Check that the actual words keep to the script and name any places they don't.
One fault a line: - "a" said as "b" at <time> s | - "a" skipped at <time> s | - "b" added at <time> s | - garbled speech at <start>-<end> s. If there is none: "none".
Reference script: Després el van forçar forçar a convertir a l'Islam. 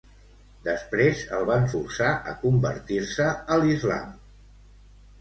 - "forçar" skipped at 2.1 s
- "se" added at 3.1 s